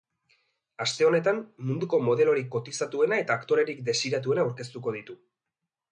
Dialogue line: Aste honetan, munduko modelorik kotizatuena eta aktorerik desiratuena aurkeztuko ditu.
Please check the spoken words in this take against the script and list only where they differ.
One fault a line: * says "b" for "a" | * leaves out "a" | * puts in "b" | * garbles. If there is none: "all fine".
all fine